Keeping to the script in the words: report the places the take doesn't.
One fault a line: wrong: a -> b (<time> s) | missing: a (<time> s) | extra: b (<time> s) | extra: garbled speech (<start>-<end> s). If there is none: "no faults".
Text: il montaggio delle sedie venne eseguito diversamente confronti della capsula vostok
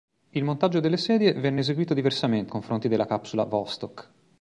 no faults